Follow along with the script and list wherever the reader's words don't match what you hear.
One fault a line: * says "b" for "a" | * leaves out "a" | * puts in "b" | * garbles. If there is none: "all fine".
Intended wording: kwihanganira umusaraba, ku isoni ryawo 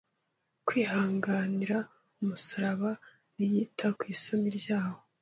* puts in "ntiyita"